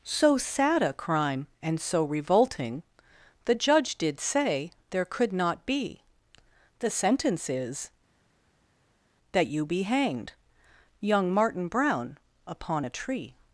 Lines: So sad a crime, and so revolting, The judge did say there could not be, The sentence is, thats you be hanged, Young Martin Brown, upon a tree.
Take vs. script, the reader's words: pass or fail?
fail